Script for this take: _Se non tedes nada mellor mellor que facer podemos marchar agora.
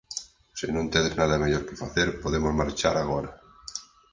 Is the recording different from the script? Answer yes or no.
yes